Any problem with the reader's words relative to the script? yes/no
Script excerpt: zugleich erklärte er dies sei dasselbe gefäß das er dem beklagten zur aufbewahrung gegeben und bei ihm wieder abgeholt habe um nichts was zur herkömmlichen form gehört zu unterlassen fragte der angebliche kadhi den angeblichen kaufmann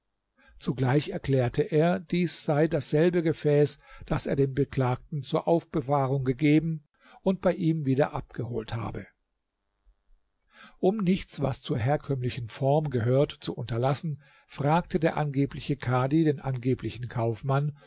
no